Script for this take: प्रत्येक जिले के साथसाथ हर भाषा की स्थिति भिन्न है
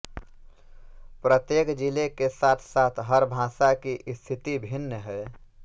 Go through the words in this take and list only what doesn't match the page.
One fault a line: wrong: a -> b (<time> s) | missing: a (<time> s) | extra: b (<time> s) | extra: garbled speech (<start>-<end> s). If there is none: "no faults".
no faults